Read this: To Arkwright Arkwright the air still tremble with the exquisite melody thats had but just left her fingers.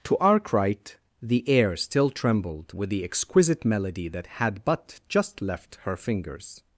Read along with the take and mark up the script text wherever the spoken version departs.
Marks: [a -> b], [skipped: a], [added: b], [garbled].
To Arkwright [skipped: Arkwright] the air still [tremble -> trembled] with the exquisite melody [thats -> that] had but just left her fingers.